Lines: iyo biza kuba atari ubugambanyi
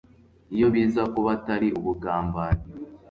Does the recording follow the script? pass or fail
pass